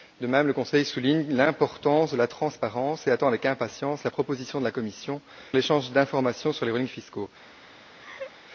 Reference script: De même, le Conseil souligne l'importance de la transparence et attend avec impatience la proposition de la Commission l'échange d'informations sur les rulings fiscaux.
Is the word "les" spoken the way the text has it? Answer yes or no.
yes